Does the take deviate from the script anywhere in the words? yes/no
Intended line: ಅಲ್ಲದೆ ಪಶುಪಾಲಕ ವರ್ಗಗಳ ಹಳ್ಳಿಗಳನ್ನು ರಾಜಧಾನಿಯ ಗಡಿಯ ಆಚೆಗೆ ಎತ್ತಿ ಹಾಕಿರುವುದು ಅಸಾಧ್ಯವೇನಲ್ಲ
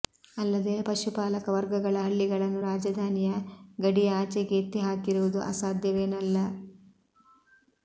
no